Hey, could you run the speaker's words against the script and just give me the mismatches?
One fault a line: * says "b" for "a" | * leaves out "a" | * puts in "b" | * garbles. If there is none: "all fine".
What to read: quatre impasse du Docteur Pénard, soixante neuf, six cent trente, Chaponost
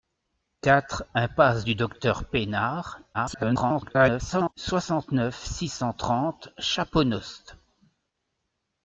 * garbles